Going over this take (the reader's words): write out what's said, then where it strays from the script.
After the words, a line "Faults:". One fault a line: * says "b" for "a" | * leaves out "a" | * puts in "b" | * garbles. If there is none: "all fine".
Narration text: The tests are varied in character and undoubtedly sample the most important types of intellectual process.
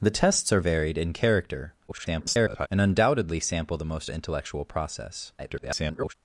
The tests are varied in character [garbled] and undoubtedly sample the most intellectual process. [garbled]
Faults:
* garbles
* leaves out "important types of"
* garbles